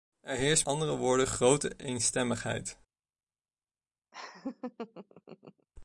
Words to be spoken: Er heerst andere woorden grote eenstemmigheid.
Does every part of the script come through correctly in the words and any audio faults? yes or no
no